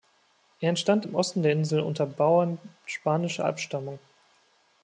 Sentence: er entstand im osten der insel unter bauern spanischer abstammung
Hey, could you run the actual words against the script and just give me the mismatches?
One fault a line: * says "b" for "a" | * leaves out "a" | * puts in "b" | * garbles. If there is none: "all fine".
all fine